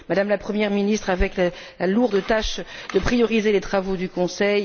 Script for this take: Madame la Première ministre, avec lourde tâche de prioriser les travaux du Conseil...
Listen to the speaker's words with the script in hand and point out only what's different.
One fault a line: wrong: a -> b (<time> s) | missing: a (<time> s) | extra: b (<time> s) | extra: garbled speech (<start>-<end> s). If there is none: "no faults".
extra: la (1.4 s)